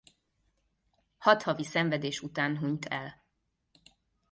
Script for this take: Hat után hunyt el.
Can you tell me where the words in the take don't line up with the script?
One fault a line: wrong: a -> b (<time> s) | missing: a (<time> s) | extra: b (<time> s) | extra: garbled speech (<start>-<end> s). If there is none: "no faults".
extra: havi szenvedés (1.4 s)